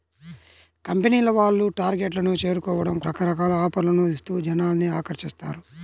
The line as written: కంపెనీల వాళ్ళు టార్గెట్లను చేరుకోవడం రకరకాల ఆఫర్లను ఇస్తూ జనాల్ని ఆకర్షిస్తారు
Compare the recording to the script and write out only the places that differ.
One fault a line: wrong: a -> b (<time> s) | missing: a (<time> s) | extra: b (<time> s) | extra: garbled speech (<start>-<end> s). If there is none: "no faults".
no faults